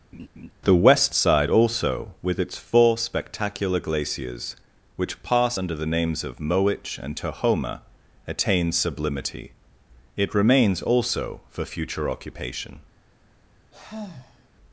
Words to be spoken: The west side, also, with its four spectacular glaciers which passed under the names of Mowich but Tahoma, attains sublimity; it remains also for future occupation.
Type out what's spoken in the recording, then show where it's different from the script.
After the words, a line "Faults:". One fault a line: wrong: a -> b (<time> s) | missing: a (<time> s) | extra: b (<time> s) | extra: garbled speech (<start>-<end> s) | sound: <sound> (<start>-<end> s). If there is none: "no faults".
The west side, also, with its four spectacular glaciers which pass under the names of Mowich and Tahoma, attains sublimity; it remains also for future occupation.
Faults:
sound: laugh (0.1-0.5 s)
wrong: passed -> pass (5.2 s)
wrong: but -> and (7.0 s)
sound: sigh (13.7-14.5 s)